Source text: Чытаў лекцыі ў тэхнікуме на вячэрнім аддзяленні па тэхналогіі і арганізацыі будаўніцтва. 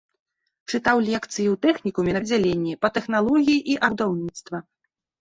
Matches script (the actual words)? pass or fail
fail